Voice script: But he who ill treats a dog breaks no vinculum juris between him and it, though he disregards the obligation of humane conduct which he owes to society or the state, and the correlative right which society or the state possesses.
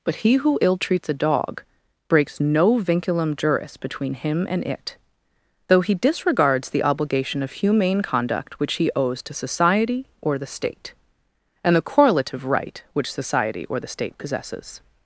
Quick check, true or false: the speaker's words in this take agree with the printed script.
true